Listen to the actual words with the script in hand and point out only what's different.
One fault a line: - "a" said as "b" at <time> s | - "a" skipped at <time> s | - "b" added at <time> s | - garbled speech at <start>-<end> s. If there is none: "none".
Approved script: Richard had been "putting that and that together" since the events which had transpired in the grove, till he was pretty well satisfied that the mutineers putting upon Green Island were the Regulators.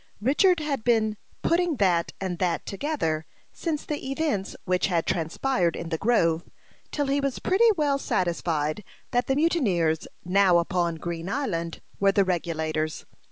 - "putting" said as "now" at 10.3 s